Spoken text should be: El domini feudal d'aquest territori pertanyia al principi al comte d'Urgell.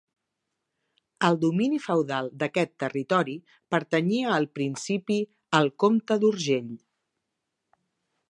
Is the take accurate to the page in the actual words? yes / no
yes